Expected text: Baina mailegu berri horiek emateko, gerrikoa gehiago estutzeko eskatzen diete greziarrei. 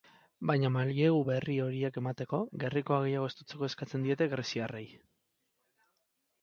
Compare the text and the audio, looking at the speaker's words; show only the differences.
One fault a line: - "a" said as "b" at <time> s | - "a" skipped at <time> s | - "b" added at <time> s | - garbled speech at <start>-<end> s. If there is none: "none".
none